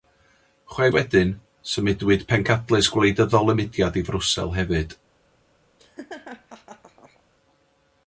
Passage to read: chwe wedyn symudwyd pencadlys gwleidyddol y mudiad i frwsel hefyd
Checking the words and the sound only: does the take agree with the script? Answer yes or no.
no